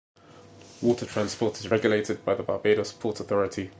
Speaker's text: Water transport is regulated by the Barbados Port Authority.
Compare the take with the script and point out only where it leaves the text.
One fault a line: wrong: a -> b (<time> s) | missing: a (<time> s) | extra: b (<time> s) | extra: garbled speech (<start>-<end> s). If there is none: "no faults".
no faults